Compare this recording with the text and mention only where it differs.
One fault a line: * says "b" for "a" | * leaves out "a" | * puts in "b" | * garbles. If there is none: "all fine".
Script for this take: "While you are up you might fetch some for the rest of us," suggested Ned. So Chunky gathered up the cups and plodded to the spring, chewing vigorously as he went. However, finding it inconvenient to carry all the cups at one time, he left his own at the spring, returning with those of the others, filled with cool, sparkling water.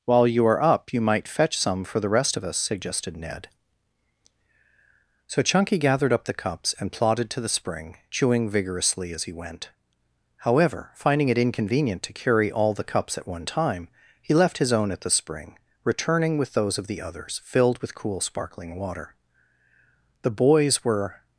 * puts in "The boys were"